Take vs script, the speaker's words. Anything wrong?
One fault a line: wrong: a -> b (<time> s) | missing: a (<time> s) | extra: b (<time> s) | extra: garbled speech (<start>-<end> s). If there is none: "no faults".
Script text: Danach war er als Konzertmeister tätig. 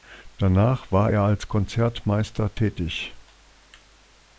no faults